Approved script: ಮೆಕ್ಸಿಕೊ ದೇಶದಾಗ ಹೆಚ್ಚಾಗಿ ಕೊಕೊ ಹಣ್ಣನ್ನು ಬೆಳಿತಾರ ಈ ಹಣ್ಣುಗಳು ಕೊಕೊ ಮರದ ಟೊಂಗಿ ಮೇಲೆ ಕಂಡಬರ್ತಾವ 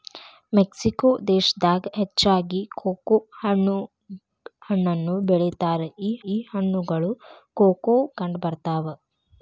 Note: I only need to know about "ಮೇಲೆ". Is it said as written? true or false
false